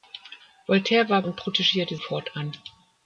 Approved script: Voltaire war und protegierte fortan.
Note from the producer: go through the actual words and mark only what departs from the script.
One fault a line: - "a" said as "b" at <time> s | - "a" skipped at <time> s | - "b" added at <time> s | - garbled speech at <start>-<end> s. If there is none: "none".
none